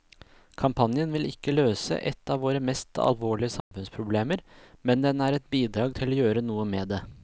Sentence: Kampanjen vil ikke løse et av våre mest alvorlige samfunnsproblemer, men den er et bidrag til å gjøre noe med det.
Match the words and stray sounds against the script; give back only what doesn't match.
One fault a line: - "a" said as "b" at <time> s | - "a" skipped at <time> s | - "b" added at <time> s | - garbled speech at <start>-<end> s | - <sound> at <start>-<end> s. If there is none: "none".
- dropout at 3.6-3.7 s